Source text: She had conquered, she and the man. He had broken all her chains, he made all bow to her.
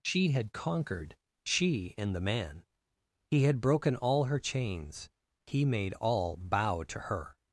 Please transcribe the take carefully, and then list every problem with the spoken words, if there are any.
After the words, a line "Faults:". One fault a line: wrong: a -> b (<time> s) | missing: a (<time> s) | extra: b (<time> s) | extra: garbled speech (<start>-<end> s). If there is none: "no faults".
She had conquered, she and the man. He had broken all her chains, he made all bow to her.
Faults:
no faults